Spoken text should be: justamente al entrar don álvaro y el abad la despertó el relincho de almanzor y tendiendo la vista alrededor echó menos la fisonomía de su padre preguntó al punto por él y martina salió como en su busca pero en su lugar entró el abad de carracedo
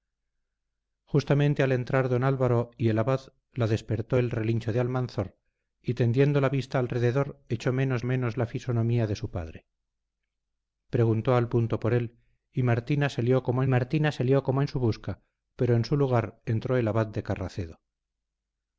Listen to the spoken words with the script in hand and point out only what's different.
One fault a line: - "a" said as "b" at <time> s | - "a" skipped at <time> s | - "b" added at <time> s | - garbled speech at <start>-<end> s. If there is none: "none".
- "menos" added at 8.0 s
- "martina salió como" added at 13.7 s